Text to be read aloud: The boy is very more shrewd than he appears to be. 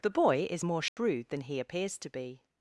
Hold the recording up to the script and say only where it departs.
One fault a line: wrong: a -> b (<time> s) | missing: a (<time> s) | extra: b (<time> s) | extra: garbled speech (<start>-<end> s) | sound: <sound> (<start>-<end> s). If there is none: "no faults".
missing: very (0.7 s)
sound: dropout (0.9-1.0 s)